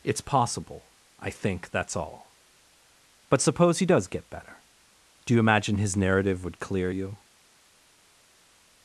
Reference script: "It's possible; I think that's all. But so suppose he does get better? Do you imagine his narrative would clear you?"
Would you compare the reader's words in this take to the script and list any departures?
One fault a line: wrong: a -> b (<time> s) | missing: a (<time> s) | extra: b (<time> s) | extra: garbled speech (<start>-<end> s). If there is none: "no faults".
missing: so (3.4 s)